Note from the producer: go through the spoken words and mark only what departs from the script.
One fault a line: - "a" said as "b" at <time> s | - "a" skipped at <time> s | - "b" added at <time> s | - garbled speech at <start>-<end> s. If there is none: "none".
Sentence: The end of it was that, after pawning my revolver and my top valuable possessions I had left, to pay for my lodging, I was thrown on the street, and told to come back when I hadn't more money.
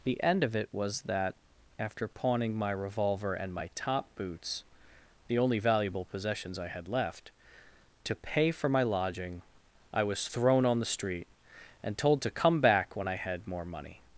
- "boots the only" added at 4.2 s
- "hadn't" said as "had" at 13.1 s